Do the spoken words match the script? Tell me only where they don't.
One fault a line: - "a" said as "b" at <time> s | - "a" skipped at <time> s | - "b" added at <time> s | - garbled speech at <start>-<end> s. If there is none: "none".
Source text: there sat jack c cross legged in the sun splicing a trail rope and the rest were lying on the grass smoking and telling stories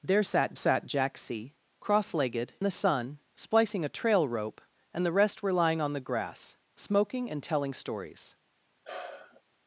- "sat" added at 0.5 s
- "in" skipped at 2.5 s